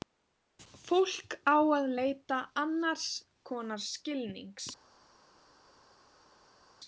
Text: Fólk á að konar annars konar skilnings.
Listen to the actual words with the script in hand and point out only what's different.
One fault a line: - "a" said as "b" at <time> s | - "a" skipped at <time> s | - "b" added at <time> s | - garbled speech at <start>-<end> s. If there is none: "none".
- "konar" said as "leita" at 2.0 s